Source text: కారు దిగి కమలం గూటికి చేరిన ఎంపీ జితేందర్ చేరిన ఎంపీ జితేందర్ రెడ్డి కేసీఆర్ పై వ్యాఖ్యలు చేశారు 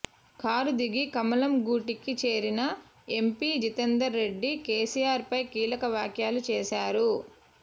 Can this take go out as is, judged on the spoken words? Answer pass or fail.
fail